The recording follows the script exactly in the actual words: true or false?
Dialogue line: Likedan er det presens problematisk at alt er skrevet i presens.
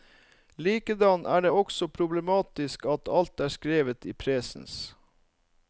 false